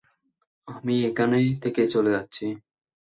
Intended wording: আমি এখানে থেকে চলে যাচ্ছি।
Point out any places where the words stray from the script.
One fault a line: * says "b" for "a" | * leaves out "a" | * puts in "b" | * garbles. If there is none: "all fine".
all fine